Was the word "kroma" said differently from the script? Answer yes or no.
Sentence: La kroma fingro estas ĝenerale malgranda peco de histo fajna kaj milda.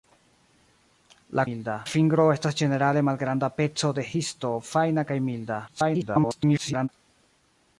yes